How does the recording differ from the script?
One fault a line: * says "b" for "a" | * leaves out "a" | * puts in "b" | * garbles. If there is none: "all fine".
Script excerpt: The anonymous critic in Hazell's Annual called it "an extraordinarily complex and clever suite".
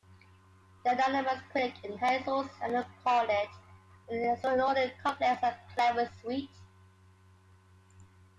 all fine